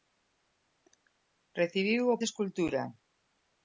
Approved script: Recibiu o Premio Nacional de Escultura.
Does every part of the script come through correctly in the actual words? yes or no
no